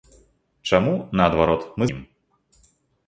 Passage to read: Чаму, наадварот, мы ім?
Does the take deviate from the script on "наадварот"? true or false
false